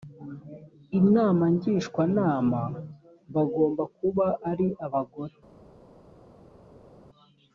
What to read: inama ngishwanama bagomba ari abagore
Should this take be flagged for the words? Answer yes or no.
yes